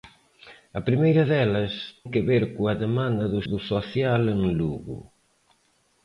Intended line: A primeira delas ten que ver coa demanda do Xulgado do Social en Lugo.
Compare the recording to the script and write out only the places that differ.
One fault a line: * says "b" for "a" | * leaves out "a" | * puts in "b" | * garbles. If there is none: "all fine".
* leaves out "ten"
* leaves out "Xulgado"